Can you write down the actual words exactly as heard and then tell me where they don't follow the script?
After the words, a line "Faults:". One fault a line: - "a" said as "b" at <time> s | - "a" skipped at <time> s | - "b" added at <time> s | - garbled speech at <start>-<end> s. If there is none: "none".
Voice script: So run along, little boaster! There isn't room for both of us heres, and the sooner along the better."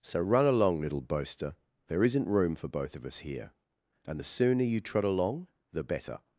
So run along, little boaster! There isn't room for both of us here, and the sooner you trot along the better."
Faults:
- "heres" said as "here" at 3.2 s
- "you trot" added at 4.6 s